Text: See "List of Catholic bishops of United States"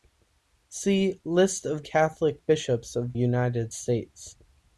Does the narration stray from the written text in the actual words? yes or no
no